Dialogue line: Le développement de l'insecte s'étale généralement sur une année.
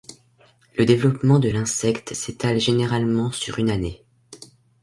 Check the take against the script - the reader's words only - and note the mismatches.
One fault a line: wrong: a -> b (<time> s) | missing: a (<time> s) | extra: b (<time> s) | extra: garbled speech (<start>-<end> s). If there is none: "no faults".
no faults